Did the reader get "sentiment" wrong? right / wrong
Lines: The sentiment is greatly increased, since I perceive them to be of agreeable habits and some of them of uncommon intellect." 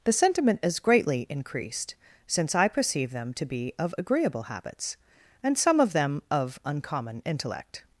right